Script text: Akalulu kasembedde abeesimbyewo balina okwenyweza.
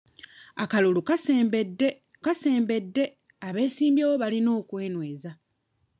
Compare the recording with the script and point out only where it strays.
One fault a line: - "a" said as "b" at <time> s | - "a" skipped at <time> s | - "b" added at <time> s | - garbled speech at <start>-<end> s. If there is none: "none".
- "kasembedde" added at 2.2 s